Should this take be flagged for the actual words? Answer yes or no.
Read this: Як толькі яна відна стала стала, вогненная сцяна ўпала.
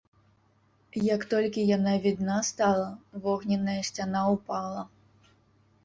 yes